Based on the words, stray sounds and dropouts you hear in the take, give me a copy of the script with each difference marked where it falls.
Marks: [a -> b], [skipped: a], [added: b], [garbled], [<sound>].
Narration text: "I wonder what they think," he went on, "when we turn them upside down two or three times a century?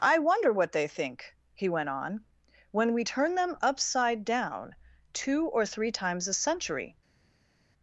"I wonder what they think," he went on, "when we turn them upside down two or three times a century?